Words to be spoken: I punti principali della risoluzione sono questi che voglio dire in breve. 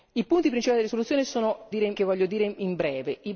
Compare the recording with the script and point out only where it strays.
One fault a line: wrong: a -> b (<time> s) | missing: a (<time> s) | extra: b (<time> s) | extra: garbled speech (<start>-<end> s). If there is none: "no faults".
wrong: questi -> dire (1.7 s)